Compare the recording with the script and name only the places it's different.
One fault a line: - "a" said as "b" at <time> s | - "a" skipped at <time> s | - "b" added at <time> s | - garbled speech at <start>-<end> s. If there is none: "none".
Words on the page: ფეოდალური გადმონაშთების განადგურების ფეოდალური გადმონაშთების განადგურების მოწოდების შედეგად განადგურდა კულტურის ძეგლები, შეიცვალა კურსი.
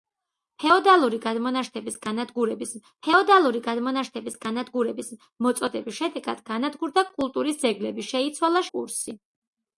none